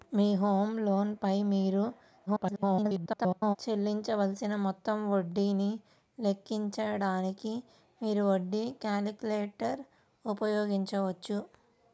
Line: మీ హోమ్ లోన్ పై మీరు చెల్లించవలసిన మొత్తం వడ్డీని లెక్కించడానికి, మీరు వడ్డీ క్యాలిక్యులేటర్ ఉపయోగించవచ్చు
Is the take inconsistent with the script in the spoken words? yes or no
yes